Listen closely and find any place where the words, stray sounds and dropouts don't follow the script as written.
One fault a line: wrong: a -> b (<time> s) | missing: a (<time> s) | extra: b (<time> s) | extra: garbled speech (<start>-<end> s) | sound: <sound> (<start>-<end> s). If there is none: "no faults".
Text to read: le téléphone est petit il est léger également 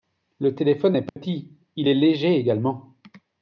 sound: dropout (1.1-1.2 s)